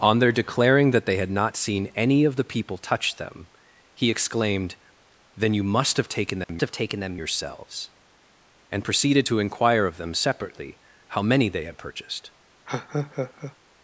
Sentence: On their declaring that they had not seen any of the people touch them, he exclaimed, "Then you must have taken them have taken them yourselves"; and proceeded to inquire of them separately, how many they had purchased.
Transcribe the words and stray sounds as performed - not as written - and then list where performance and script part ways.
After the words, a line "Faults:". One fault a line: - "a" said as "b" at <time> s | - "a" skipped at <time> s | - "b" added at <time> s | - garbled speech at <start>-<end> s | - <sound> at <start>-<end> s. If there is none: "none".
On their declaring that they had not seen any of the people touch them, he exclaimed, "Then you must have taken them have taken them yourselves"; and proceeded to inquire of them separately, how many they had purchased.
Faults:
- dropout at 6.4-6.5 s
- laugh at 12.7-13.5 s